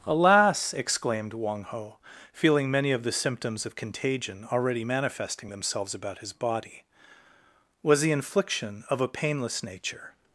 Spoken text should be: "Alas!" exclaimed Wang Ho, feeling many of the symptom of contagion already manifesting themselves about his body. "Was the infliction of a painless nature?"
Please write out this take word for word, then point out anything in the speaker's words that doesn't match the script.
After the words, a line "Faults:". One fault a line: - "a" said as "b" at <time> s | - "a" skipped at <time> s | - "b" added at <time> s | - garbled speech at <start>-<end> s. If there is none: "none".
"Alas!" exclaimed Wang Ho, feeling many of the symptoms of contagion already manifesting themselves about his body. "Was the infliction of a painless nature?"
Faults:
- "symptom" said as "symptoms" at 3.1 s